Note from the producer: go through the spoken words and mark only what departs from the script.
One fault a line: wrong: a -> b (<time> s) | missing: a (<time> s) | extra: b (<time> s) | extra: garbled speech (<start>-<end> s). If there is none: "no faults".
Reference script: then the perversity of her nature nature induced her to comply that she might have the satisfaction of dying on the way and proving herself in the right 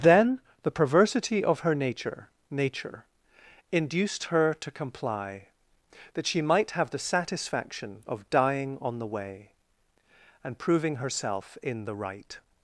no faults